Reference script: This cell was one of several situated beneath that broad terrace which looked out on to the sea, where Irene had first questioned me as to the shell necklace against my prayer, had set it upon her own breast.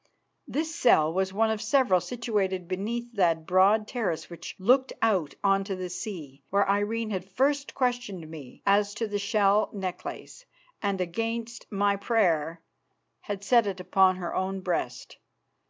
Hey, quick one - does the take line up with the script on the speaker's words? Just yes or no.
no